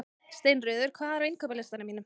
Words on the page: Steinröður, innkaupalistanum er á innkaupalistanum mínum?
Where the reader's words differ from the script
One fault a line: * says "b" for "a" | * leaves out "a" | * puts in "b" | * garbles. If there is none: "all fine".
* says "hvað" for "innkaupalistanum"